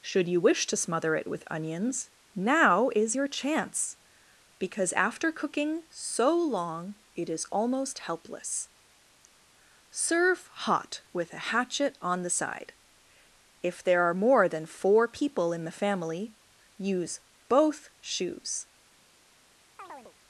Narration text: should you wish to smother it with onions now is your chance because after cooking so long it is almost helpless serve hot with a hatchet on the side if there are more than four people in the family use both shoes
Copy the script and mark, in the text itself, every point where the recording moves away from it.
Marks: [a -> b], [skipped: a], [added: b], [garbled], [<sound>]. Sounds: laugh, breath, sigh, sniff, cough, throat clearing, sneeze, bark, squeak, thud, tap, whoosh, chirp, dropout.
should you wish to smother it with onions now is your chance because after cooking so long it is almost helpless serve hot with a hatchet on the side if there are more than four people in the family use both shoes [chirp]